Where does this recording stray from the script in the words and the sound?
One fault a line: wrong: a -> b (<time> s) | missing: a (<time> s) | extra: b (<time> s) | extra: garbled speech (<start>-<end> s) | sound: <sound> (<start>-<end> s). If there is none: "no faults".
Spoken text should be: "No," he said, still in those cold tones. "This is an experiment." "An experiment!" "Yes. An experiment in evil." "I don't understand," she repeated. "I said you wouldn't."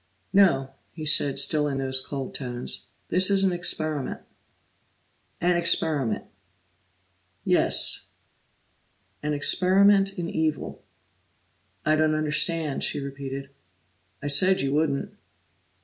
no faults